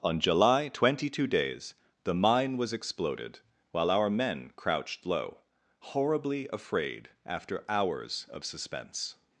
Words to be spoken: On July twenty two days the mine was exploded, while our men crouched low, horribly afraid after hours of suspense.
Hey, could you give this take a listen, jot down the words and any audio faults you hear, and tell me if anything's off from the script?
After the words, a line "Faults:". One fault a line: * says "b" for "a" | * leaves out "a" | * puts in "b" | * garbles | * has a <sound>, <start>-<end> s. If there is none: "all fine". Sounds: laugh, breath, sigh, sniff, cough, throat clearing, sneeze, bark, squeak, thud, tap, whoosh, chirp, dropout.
On July twenty two days the mine was exploded, while our men crouched low, horribly afraid after hours of suspense.
Faults:
all fine